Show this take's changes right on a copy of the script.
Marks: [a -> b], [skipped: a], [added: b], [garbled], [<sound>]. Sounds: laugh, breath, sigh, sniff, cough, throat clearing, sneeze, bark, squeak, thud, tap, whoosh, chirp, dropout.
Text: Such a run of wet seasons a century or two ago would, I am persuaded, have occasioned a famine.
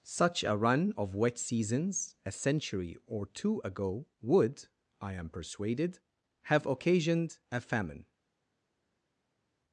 Such a run of wet seasons a century or two ago would, I am persuaded, have occasioned a famine.